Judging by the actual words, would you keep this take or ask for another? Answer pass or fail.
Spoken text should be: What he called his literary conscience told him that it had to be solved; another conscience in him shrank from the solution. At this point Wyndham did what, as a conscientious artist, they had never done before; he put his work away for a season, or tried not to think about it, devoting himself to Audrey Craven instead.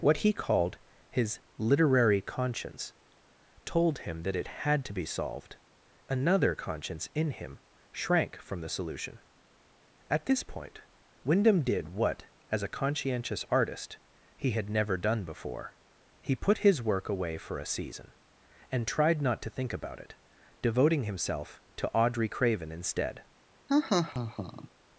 fail